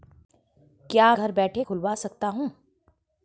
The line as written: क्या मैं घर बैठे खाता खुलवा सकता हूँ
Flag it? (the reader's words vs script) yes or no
yes